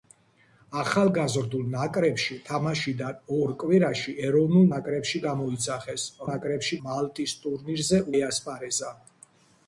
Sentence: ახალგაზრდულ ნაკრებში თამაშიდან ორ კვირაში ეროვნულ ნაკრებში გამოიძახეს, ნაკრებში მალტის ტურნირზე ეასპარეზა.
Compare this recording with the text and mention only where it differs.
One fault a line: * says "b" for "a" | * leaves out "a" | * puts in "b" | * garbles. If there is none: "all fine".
all fine